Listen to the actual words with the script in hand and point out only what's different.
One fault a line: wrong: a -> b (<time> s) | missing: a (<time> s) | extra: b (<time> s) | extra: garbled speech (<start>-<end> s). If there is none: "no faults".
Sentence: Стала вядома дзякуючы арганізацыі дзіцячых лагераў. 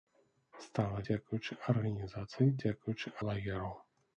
missing: вядома (1.0 s)
wrong: дзіцячых -> дзякуючы (2.6 s)